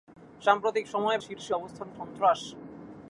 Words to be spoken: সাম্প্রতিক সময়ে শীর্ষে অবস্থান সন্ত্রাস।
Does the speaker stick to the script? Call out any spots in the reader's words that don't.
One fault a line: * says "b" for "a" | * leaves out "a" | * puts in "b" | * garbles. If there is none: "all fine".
all fine